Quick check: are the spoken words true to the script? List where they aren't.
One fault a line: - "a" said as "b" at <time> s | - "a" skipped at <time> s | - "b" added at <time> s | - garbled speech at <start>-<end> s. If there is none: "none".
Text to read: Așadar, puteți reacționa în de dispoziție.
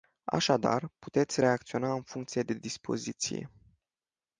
- "funcție" added at 2.0 s